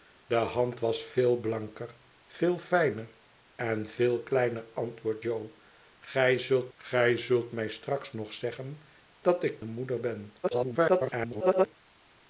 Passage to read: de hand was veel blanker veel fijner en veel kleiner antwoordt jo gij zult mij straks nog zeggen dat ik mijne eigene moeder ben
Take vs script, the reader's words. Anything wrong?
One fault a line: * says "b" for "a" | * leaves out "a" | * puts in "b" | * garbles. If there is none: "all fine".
* puts in "gij zult"
* leaves out "mijne eigene"
* garbles